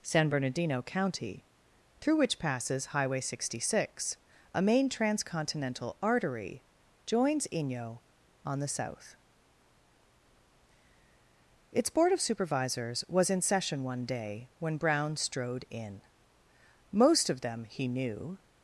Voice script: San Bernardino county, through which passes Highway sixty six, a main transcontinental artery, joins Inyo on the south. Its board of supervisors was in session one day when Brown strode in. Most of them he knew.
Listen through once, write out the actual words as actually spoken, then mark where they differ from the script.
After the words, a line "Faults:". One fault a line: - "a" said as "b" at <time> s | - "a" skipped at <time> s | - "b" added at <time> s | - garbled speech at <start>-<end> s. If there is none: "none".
San Bernardino county, through which passes Highway sixty six, a main transcontinental artery, joins Inyo on the south. Its board of supervisors was in session one day when Brown strode in. Most of them he knew.
Faults:
none